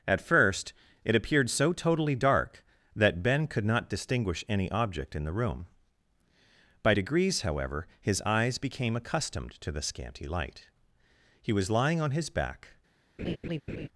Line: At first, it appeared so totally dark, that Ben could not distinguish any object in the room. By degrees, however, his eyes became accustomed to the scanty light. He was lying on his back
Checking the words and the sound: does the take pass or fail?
fail